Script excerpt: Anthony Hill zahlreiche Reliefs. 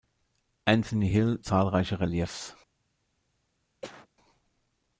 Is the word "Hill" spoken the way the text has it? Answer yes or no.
yes